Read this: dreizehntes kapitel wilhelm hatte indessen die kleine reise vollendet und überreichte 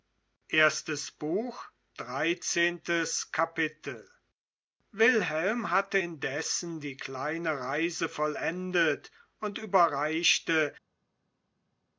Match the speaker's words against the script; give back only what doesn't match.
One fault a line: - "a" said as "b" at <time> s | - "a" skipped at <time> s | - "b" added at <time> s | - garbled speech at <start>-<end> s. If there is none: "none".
none